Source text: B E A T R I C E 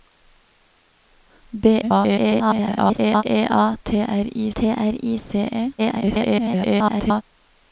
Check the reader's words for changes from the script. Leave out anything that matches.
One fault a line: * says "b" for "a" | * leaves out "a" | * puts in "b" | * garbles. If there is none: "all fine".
* garbles
* puts in "T R I"
* garbles